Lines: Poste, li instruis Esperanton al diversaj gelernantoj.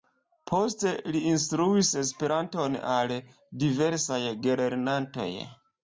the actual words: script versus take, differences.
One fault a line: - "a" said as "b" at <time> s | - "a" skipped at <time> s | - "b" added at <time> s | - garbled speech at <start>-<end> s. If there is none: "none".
none